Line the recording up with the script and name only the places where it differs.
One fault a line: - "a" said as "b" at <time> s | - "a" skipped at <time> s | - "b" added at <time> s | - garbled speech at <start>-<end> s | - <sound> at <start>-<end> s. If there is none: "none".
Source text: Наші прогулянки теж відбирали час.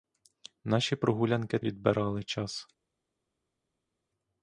- "теж" skipped at 1.6 s